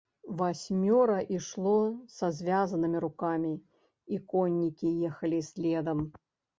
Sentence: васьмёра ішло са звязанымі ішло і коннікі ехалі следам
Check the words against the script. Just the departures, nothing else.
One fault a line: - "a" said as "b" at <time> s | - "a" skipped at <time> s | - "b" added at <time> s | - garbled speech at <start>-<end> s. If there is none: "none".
- "ішло" said as "рукамі" at 3.0 s